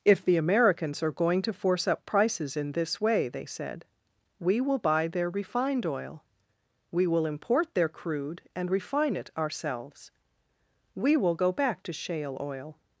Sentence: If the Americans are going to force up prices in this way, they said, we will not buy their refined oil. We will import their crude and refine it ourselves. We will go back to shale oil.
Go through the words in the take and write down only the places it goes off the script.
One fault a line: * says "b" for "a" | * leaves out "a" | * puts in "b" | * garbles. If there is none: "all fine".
* leaves out "not"